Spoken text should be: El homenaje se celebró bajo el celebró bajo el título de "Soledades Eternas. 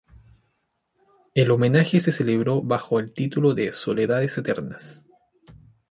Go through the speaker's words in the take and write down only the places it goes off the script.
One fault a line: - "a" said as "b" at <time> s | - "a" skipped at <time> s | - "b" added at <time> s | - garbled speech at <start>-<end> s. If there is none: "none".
- "celebró bajo el" skipped at 3.1 s